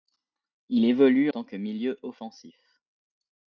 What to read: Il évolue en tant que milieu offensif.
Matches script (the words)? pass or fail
fail